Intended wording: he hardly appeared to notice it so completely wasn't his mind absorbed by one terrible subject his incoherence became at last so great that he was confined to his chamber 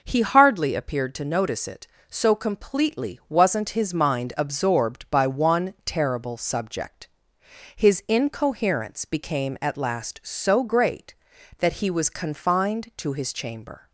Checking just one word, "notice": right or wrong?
right